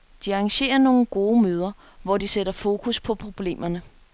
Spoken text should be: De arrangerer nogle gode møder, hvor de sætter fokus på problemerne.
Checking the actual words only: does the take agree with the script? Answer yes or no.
yes